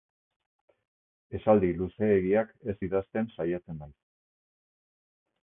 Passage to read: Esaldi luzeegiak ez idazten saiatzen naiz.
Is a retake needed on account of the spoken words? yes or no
no